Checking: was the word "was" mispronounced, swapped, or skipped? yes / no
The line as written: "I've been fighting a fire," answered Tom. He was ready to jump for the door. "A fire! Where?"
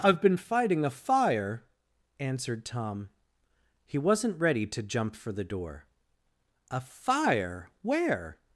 yes